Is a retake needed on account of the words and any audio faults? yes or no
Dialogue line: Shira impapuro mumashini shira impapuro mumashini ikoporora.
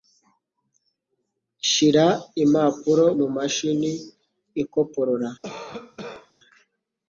yes